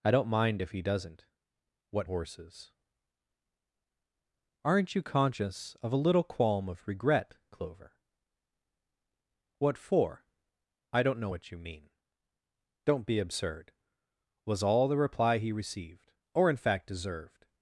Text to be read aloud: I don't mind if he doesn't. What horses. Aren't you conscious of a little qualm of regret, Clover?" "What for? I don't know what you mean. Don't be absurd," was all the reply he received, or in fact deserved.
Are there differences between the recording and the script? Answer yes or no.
no